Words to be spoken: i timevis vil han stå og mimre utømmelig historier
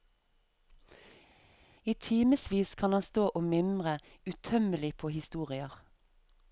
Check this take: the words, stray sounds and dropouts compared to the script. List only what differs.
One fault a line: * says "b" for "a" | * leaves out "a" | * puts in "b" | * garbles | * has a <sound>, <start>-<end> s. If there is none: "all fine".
* says "kan" for "vil"
* puts in "på"